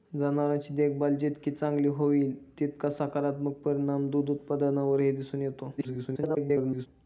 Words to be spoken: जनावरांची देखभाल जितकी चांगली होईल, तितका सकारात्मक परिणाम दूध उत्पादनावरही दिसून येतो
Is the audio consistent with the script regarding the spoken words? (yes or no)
no